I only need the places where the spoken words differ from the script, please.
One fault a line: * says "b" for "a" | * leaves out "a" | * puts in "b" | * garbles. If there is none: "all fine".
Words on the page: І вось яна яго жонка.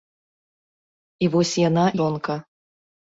* leaves out "яго"